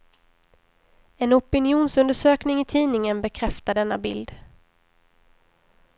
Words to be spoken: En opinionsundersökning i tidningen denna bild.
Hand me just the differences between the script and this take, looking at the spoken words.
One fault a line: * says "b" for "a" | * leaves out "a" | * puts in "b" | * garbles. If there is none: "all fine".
* puts in "bekräftar"